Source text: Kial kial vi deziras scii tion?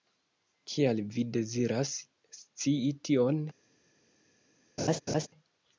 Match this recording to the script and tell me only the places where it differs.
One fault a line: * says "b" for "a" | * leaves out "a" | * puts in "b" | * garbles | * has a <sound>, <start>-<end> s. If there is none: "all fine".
* leaves out "kial"
* has a laugh, 4.8-5.3 s